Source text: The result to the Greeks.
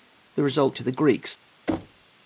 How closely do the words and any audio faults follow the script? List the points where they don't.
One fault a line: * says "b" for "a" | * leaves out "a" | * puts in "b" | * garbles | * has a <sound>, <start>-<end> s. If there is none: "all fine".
* has a thud, 1.7-2.1 s